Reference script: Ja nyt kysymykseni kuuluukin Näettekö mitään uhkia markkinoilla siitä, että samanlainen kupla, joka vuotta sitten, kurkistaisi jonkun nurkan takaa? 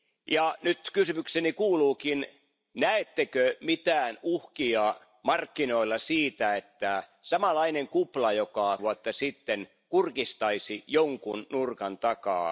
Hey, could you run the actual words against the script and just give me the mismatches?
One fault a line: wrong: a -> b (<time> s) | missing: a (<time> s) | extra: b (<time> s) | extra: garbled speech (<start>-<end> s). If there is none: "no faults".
no faults